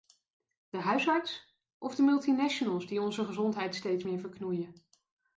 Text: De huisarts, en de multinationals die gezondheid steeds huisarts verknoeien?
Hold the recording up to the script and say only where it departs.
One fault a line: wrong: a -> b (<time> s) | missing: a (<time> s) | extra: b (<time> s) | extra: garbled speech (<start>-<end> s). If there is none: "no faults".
wrong: en -> of (1.8 s)
extra: onze (3.0 s)
wrong: huisarts -> meer (4.0 s)